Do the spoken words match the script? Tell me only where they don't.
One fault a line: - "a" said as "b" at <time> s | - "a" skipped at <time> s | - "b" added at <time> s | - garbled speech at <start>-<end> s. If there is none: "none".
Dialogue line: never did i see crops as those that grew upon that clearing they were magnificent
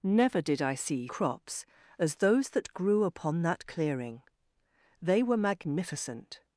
none